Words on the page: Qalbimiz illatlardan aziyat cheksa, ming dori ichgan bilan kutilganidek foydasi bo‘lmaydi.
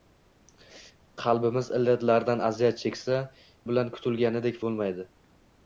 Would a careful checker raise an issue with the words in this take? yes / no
yes